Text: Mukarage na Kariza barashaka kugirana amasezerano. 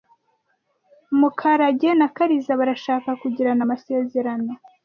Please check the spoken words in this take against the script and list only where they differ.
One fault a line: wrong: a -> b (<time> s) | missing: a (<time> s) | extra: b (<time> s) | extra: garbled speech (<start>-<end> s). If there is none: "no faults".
no faults